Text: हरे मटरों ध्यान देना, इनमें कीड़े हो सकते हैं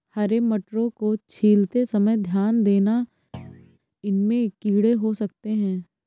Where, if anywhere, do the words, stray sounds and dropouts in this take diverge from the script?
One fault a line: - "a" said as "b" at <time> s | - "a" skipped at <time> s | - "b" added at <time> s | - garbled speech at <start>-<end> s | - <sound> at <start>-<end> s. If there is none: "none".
- "को छीलते समय" added at 0.9 s
- thud at 3.3-3.8 s